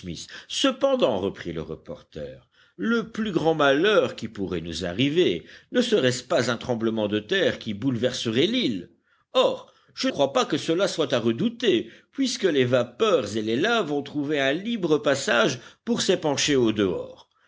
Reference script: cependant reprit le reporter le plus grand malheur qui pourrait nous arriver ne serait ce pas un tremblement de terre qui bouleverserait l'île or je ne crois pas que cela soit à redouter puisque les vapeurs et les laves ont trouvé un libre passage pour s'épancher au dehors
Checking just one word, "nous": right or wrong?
right